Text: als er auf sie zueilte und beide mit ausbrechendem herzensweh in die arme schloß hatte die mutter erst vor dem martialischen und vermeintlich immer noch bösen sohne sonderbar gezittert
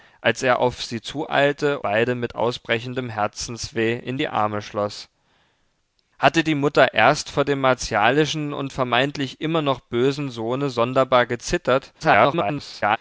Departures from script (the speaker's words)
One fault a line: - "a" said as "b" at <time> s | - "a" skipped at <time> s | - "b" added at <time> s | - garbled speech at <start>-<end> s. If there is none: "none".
- "und" skipped at 1.8 s
- garbled speech at 12.0-13.0 s